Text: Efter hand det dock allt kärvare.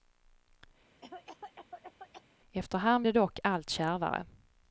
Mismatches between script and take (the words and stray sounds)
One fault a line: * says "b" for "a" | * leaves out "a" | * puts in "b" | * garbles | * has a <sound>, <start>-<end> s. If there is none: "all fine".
* has a cough, 1.0-2.2 s